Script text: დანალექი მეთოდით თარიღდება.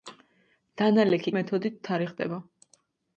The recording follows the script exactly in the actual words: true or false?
true